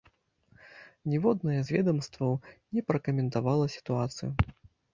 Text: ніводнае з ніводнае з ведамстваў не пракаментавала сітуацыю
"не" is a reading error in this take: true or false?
false